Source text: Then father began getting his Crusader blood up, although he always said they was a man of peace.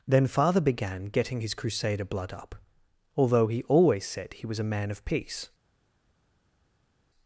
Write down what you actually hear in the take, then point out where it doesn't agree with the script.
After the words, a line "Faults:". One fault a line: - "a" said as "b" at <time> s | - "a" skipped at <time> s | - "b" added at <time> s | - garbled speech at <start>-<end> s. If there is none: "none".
Then father began getting his Crusader blood up, although he always said he was a man of peace.
Faults:
- "they" said as "he" at 4.3 s